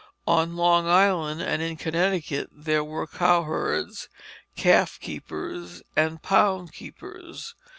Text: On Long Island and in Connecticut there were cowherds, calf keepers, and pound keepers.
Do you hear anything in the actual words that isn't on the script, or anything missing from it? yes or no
no